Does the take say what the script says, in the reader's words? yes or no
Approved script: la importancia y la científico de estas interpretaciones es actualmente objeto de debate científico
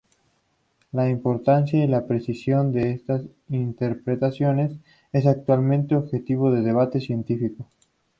no